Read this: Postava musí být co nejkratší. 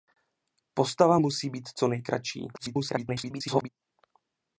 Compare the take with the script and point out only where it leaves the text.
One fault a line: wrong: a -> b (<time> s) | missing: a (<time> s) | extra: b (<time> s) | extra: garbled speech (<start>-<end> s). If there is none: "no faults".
extra: garbled speech (2.5-3.7 s)